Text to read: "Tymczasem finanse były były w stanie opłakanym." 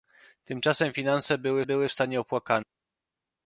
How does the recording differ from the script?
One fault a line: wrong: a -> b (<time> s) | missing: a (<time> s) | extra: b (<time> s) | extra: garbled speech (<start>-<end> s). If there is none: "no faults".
no faults